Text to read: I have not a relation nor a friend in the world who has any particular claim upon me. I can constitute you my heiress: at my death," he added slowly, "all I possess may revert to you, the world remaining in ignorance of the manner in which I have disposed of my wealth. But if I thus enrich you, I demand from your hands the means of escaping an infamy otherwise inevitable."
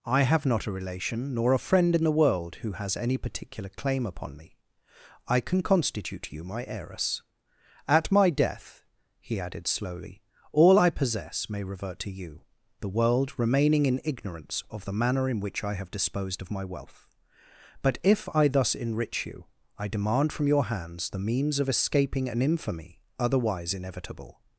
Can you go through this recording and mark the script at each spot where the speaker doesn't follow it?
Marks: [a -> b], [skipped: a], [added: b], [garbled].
I have not a relation nor a friend in the world who has any particular claim upon me. I can constitute you my heiress: at my death," he added slowly, "all I possess may revert to you, the world remaining in ignorance of the manner in which I have disposed of my wealth. But if I thus enrich you, I demand from your hands the means of escaping an infamy otherwise inevitable."